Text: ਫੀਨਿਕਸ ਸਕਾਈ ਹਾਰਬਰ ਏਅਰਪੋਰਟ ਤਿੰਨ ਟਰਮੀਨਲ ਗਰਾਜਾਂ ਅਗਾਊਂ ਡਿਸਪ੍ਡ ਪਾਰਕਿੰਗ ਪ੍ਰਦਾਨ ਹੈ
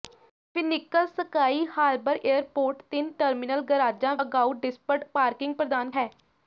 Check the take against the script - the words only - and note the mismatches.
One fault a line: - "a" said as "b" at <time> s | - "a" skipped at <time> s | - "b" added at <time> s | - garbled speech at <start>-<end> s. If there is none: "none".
none